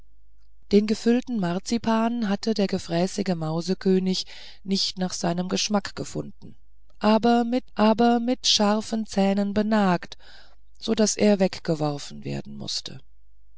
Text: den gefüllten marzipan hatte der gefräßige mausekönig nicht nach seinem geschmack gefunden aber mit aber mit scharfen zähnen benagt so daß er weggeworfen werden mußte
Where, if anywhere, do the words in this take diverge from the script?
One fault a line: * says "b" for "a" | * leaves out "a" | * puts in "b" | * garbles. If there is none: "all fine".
all fine